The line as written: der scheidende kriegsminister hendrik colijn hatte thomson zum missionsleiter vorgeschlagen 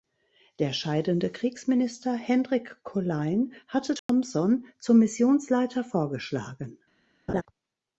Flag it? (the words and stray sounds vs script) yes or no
yes